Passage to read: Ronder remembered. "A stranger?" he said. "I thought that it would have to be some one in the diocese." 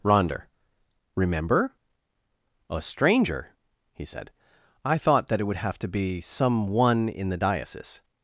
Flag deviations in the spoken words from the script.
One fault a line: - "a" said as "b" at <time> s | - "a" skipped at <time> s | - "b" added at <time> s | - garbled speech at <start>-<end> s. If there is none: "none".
- "remembered" said as "remember" at 1.1 s